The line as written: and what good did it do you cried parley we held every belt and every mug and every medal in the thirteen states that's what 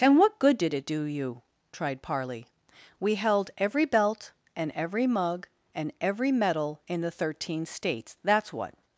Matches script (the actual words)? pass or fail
fail